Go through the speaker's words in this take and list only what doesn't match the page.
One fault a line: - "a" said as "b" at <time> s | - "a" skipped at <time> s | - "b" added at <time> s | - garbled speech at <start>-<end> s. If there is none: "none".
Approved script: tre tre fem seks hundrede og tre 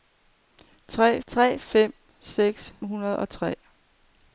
none